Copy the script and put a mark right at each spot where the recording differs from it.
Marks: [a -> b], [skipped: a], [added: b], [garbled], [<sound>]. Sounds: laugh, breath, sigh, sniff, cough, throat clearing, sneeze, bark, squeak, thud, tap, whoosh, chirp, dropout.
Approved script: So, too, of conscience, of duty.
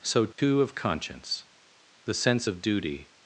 So, too, [dropout] of conscience, [added: the sense] of duty.